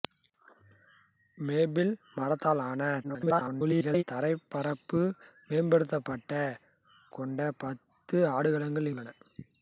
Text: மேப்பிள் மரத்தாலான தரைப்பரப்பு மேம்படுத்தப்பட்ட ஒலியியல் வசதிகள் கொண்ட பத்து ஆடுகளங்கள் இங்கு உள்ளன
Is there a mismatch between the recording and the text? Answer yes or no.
yes